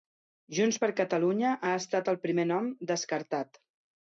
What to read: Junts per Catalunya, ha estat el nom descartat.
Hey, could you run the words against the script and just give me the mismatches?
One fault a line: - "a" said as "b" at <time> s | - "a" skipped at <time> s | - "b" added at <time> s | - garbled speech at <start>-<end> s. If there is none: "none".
- "primer" added at 2.3 s